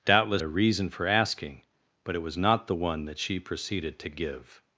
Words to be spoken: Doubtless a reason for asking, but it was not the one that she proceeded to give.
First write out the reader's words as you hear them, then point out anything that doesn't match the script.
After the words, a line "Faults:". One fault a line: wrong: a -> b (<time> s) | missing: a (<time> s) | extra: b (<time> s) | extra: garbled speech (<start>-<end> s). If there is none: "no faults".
Doubtless a reason for asking, but it was not the one that she proceeded to give.
Faults:
no faults